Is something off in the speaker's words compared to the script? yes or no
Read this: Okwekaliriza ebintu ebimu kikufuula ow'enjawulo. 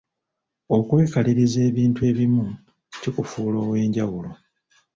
no